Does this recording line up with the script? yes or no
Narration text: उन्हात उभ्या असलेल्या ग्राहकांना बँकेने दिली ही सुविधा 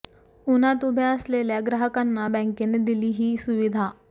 yes